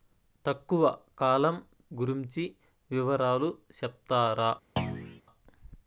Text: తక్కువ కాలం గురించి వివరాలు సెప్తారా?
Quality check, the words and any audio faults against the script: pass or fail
fail